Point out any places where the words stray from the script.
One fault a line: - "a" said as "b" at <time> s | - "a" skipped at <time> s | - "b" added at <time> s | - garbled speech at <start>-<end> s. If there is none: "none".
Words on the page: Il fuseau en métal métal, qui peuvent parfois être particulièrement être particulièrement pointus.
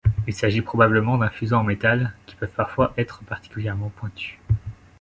- "s'agit probablement d'un" added at 0.3 s
- "métal" skipped at 2.1 s
- "être particulièrement" skipped at 3.9 s